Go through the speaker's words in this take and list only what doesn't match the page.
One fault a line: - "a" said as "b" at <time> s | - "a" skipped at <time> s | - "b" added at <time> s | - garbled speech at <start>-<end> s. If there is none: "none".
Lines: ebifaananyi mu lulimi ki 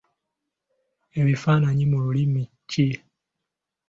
none